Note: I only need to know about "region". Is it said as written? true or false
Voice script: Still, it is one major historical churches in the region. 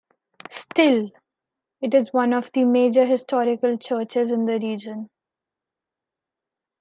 true